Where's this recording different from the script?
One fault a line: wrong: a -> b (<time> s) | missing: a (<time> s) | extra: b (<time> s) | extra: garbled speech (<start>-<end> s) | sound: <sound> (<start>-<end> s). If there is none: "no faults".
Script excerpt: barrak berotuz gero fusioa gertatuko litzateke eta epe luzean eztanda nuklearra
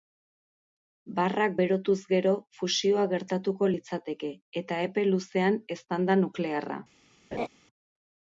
sound: laugh (7.3-7.5 s)